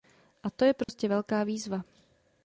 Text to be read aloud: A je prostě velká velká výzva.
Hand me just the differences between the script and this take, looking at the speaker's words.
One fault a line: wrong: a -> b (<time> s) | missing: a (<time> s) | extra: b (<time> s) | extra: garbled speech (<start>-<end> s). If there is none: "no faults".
extra: to (0.5 s)
missing: velká (1.4 s)